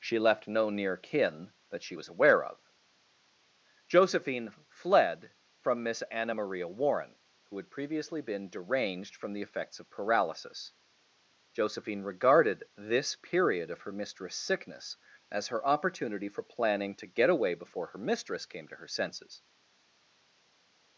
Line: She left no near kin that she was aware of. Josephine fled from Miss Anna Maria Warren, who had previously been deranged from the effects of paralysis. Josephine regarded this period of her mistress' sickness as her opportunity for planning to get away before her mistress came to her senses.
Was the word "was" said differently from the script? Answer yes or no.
no